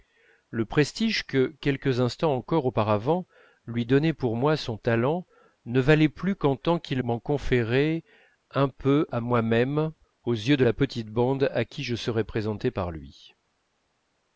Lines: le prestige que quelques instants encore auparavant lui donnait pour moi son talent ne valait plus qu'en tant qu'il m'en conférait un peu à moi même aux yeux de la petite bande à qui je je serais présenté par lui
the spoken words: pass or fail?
fail